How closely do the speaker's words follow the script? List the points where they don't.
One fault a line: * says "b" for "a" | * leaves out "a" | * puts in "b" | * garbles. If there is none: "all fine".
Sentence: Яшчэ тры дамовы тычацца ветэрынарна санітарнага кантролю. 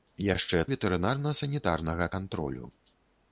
* leaves out "тры дамовы тычацца"